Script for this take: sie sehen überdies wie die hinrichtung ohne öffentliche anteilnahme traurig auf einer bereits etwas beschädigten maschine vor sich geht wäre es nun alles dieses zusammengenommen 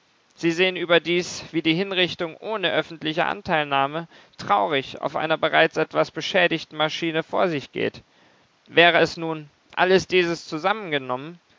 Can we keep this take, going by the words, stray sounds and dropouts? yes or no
yes